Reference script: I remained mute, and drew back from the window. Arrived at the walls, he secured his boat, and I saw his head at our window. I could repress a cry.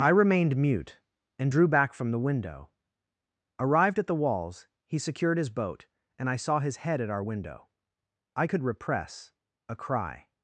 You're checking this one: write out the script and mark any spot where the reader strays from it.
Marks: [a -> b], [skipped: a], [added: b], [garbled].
I remained mute, and drew back from the window. Arrived at the walls, he secured his boat, and I saw his head at our window. I could repress a cry.